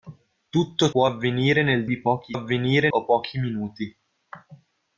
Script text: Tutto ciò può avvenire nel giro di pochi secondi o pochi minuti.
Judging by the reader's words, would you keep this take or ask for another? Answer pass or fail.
fail